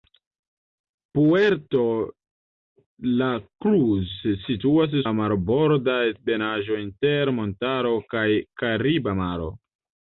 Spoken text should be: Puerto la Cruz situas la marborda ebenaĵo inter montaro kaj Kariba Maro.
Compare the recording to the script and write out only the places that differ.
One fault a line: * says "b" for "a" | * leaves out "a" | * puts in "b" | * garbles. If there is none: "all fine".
all fine